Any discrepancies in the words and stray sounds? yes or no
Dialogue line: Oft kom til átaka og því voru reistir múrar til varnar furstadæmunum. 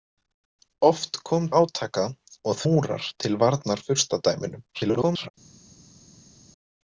yes